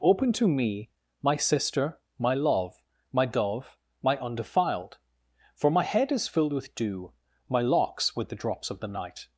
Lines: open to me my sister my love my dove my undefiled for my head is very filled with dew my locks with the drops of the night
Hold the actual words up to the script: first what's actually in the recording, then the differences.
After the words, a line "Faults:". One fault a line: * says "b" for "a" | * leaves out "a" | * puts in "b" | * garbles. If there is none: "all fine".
open to me my sister my love my dove my undefiled for my head is filled with dew my locks with the drops of the night
Faults:
* leaves out "very"